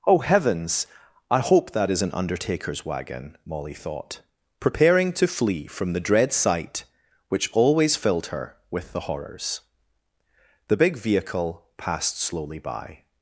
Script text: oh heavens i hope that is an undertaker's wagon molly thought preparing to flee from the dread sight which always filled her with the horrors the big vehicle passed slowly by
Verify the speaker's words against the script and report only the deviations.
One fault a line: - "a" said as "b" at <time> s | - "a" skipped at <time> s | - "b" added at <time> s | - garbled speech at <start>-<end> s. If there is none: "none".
none